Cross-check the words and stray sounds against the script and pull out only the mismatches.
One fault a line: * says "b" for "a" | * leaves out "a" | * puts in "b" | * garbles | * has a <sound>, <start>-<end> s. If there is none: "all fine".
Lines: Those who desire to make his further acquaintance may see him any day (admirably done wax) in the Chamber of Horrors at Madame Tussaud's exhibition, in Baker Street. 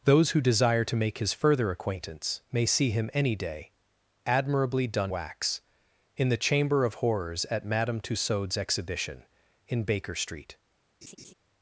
* has a laugh, 11.0-11.3 s